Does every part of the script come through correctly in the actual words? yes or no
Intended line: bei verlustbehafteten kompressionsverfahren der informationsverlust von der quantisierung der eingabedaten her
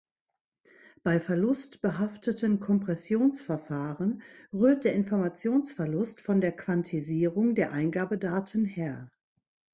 no